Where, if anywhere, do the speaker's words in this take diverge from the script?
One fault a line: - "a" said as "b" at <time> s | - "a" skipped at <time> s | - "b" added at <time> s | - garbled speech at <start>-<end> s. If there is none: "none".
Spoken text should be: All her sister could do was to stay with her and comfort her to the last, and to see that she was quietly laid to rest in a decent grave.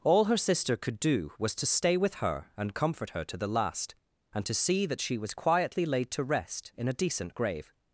none